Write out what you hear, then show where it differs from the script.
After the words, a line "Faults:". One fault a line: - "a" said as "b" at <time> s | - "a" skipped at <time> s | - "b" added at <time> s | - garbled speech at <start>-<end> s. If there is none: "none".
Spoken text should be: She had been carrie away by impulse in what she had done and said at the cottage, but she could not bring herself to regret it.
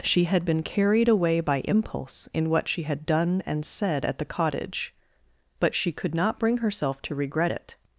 She had been carried away by impulse in what she had done and said at the cottage, but she could not bring herself to regret it.
Faults:
- "carrie" said as "carried" at 0.6 s